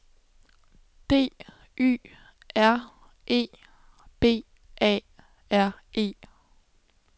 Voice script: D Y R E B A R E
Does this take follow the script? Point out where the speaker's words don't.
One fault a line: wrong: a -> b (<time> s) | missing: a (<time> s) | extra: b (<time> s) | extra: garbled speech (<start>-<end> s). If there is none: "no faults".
no faults